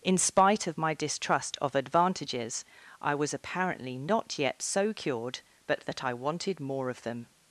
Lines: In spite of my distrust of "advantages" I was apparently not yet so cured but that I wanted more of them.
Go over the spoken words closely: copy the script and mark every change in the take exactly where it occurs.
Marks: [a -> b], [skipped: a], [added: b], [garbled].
In spite of my distrust of "advantages" I was apparently not yet so cured but that I wanted more of them.